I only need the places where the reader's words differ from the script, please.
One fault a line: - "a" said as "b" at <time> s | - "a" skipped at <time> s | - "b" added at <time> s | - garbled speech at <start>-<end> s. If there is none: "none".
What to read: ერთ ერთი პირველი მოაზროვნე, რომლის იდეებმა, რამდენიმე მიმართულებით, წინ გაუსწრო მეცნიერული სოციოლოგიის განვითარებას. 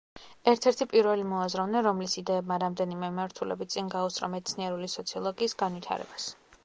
none